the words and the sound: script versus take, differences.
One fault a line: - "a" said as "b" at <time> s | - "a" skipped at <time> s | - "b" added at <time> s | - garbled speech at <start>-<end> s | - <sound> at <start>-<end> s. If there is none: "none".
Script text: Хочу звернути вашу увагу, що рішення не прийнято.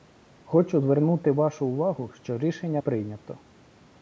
- "не" skipped at 2.8 s